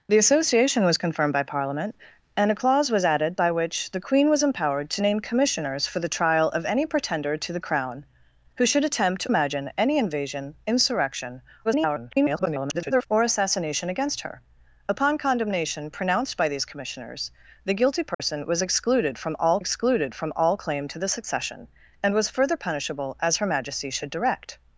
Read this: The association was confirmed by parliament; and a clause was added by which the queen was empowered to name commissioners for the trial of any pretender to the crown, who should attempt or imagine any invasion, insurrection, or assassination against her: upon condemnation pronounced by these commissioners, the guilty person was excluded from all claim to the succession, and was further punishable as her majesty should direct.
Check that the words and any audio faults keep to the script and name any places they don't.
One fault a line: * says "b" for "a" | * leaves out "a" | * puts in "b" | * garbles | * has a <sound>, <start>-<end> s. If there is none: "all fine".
* leaves out "or"
* garbles
* has a dropout, 18.1-18.2 s
* puts in "excluded from all"